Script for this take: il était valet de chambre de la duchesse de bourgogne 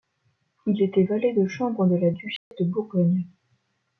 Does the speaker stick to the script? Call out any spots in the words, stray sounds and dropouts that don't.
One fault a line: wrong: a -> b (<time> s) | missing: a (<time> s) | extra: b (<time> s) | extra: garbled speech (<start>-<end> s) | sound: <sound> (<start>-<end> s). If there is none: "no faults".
sound: dropout (2.4-2.5 s)